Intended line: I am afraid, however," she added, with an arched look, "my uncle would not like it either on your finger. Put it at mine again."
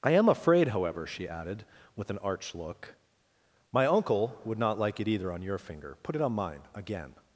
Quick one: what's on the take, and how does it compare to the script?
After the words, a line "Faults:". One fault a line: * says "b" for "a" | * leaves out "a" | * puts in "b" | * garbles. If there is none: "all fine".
I am afraid, however," she added, with an arch look, "my uncle would not like it either on your finger. Put it on mine again."
Faults:
* says "arch" for "arched"
* says "on" for "at"